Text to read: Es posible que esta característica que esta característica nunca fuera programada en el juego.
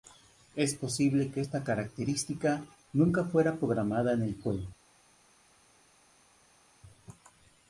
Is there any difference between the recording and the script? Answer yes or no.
yes